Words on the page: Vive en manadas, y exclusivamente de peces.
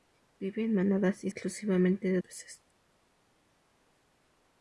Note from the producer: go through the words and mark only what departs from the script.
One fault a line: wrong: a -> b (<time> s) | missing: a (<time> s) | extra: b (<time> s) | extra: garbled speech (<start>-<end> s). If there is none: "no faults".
no faults